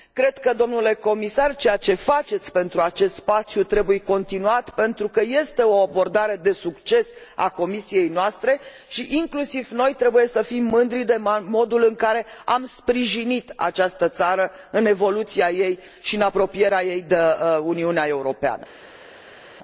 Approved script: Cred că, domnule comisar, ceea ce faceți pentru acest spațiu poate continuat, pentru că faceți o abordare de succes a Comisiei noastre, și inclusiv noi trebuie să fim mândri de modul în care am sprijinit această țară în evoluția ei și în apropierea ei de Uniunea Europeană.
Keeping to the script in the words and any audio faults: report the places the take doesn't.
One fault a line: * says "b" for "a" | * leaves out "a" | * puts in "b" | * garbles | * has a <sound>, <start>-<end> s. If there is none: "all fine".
* says "trebuie" for "poate"
* says "este" for "faceți"